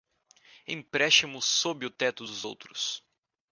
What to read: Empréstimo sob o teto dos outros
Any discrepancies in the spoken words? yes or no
no